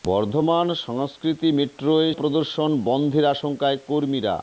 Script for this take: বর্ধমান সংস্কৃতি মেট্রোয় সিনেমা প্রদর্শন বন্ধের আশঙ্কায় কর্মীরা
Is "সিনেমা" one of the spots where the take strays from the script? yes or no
yes